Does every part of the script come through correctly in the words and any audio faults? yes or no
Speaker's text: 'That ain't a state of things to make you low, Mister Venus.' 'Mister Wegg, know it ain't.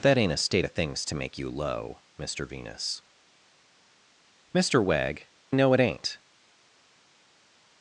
yes